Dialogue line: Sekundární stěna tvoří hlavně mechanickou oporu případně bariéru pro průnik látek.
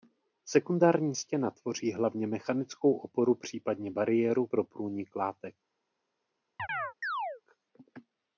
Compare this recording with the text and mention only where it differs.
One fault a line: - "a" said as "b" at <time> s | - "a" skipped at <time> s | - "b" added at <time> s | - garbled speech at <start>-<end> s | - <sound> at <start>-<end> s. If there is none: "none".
- chirp at 6.6-7.4 s